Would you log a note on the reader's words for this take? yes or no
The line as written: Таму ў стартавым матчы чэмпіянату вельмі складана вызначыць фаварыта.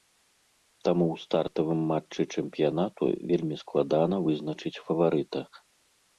no